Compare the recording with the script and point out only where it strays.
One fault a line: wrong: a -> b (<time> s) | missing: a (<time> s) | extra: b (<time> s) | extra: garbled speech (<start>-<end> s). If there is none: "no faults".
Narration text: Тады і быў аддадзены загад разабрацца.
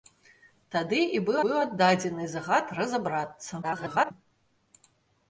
extra: быў (1.4 s)
extra: garbled speech (3.6-4.1 s)